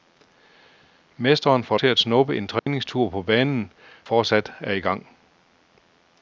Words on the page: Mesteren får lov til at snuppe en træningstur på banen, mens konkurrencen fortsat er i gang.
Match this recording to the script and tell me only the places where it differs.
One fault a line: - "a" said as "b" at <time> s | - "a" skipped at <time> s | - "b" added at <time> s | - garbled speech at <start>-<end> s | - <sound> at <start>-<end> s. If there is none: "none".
- "lov" skipped at 1.8 s
- dropout at 2.6-2.7 s
- "mens konkurrencen" skipped at 3.7 s